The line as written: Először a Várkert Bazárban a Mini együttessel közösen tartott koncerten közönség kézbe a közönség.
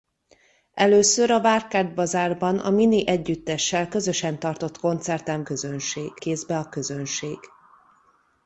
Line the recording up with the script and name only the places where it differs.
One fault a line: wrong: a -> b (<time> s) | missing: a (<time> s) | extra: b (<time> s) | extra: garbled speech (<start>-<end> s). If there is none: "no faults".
no faults